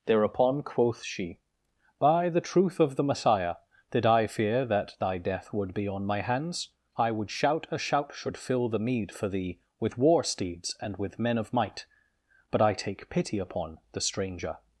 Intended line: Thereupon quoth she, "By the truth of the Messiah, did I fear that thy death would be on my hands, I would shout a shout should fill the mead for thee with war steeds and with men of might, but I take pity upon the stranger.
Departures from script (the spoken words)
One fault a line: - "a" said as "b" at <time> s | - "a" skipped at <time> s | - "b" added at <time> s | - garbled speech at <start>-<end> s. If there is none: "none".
none